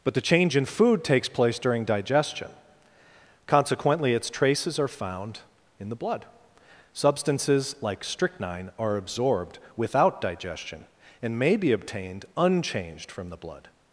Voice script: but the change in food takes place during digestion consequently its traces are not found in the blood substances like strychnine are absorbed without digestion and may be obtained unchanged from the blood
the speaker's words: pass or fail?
fail